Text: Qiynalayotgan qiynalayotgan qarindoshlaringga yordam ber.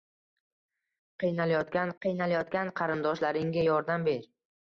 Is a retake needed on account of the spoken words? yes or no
no